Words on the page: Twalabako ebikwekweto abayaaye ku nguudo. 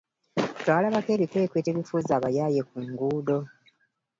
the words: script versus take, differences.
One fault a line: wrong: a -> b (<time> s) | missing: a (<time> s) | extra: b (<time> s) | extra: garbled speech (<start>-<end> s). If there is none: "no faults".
extra: ebifuuza (1.7 s)